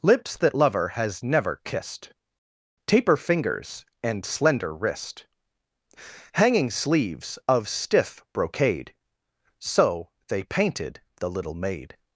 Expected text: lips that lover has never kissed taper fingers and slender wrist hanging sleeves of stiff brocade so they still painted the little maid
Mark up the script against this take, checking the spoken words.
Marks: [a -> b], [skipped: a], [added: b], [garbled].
lips that lover has never kissed taper fingers and slender wrist hanging sleeves of stiff brocade so they [skipped: still] painted the little maid